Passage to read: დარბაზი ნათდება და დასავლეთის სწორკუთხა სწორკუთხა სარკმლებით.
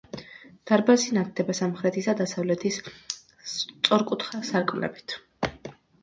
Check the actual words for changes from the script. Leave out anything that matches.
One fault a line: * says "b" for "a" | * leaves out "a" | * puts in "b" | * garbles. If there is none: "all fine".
* puts in "სამხრეთის"
* leaves out "სწორკუთხა"